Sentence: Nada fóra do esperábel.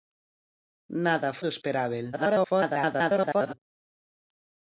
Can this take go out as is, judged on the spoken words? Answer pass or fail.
fail